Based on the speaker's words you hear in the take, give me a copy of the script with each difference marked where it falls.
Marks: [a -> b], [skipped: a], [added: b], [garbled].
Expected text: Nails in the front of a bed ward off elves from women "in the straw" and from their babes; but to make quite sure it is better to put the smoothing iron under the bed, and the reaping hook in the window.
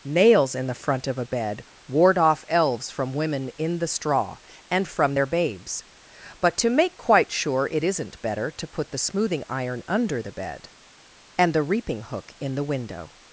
Nails in the front of a bed ward off elves from women "in the straw" and from their babes; but to make quite sure it [is -> isn't] better to put the smoothing iron under the bed, and the reaping hook in the window.